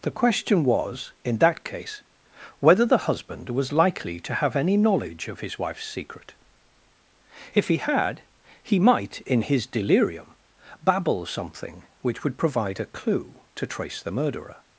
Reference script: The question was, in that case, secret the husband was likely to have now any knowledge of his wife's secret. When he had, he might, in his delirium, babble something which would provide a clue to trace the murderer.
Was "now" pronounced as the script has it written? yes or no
no